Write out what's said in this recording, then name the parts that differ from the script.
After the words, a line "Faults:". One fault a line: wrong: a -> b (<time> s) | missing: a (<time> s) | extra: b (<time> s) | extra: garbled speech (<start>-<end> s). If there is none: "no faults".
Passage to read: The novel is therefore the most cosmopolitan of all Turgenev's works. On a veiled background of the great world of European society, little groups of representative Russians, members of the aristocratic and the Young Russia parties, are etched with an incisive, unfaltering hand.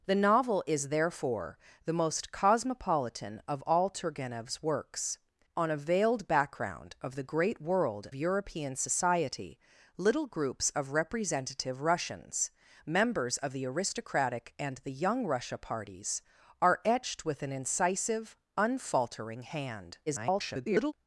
The novel is therefore the most cosmopolitan of all Turgenev's works. On a veiled background of the great world European society, little groups of representative Russians, members of the aristocratic and the Young Russia parties, are etched with an incisive, unfaltering hand. [garbled]
Faults:
missing: of (8.1 s)
extra: garbled speech (20.1-20.9 s)